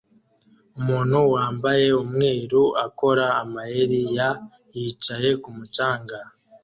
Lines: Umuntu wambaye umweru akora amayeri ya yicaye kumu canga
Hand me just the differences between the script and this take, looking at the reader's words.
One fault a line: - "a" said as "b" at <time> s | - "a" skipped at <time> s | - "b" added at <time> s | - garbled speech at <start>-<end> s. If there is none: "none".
none